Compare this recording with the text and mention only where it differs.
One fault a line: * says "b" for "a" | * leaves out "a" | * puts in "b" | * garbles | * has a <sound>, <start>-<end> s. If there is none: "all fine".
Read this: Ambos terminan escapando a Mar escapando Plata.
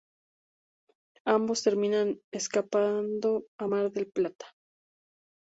* says "del" for "escapando"